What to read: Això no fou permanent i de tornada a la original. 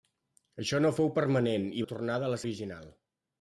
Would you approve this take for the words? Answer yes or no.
yes